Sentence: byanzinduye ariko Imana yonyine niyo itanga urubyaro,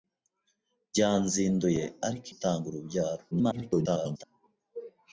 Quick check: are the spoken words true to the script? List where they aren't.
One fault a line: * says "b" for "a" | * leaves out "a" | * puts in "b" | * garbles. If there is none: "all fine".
* leaves out "Imana yonyine niyo"
* garbles